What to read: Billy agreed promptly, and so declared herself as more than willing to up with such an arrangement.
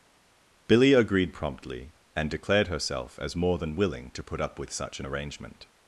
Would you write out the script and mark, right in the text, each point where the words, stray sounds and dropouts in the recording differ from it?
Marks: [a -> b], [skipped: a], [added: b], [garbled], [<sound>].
Billy agreed promptly, and [skipped: so] declared herself as more than willing to [added: put] up with such an arrangement.